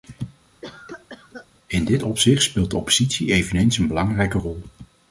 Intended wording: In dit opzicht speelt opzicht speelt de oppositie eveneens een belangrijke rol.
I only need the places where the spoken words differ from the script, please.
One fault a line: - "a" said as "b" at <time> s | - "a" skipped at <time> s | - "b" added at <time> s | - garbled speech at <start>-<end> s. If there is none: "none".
- "opzicht speelt" skipped at 2.7 s